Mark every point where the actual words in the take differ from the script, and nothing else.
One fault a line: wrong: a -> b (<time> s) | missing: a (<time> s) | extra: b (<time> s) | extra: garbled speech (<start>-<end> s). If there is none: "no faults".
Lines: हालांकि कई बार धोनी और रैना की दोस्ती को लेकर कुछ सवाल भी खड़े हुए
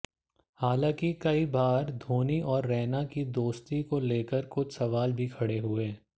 no faults